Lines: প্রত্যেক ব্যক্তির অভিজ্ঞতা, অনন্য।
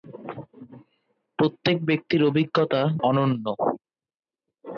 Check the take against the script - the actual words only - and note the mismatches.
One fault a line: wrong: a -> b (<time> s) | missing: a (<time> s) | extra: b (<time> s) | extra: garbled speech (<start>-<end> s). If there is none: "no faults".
no faults